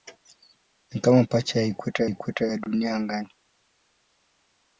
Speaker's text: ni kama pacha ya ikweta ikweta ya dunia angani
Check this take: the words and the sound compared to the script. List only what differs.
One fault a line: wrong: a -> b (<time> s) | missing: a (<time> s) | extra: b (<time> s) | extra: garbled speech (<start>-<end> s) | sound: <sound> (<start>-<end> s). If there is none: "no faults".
no faults